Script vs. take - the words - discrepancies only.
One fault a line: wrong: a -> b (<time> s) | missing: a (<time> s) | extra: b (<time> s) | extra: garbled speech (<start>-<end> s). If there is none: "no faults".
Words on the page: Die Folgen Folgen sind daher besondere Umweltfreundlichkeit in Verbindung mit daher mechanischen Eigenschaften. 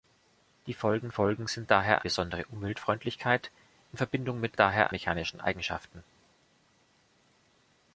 no faults